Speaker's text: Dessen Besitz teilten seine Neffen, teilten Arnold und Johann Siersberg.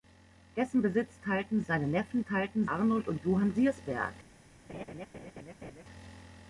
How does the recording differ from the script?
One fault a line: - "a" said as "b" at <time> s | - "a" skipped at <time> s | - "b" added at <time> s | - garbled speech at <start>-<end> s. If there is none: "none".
none